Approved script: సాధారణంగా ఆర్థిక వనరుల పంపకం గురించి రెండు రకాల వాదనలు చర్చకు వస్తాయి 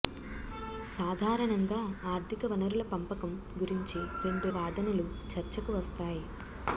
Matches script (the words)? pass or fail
fail